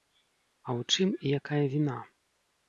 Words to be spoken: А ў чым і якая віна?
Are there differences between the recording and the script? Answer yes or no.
no